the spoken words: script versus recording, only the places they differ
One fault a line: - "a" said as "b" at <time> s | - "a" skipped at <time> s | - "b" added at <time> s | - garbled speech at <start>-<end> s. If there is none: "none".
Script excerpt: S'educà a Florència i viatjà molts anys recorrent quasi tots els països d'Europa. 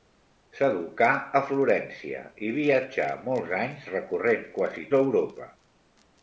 - "tots els països" skipped at 4.9 s